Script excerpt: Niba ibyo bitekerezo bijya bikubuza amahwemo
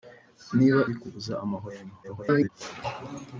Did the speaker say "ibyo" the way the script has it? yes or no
no